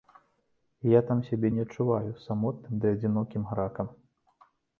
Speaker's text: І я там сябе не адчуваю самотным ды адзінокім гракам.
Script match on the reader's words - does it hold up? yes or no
yes